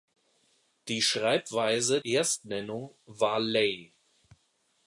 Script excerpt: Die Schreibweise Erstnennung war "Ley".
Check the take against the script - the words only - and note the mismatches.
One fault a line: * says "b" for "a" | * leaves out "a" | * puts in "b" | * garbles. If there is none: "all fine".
all fine